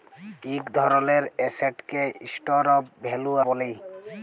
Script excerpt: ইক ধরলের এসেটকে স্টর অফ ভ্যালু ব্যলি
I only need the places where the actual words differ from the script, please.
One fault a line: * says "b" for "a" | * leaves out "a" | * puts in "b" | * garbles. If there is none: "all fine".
all fine